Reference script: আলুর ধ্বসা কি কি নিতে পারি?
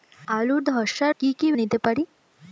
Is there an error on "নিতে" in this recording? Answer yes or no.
no